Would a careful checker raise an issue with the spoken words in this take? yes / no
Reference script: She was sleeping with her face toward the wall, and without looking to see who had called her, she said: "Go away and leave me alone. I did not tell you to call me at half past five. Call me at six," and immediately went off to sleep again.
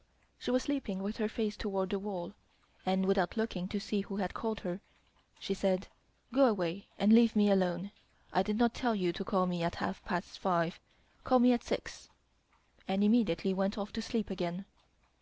no